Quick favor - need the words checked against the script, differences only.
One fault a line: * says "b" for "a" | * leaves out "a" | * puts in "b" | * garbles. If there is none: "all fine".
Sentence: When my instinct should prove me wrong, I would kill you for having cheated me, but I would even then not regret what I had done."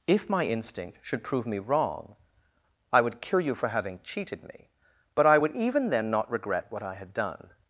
* says "If" for "When"